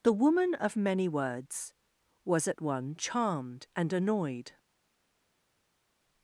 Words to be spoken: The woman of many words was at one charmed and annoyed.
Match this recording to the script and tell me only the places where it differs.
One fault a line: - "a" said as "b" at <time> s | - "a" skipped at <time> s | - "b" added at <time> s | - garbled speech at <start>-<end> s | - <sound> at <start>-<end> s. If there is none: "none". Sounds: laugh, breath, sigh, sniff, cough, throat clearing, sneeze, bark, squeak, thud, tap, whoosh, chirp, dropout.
none